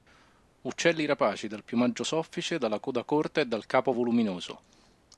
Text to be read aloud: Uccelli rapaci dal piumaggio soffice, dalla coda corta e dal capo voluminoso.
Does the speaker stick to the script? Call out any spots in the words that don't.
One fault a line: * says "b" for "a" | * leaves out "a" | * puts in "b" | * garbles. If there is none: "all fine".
all fine